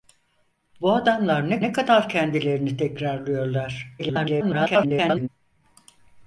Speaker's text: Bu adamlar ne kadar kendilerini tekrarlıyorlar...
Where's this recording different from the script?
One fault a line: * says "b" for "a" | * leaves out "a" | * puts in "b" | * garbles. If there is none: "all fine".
* puts in "ne"
* garbles